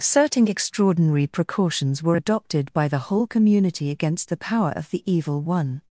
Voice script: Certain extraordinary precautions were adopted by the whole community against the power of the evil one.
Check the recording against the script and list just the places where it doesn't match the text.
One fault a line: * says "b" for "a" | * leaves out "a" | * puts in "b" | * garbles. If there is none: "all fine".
all fine